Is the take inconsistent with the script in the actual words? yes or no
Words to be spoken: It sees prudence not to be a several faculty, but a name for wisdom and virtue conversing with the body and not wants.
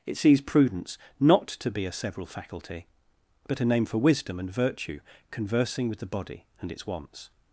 yes